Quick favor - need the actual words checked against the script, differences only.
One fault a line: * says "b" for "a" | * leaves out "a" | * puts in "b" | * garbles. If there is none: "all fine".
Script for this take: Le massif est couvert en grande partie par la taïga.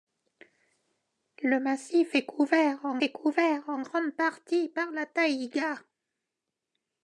* puts in "est couvert en"